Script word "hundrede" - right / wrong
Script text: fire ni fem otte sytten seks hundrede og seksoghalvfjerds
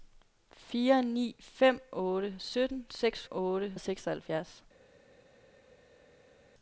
wrong